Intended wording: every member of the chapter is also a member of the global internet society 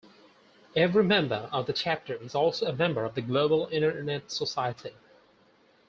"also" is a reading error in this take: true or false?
false